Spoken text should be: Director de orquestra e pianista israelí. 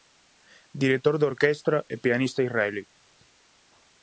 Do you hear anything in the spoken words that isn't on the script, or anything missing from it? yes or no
no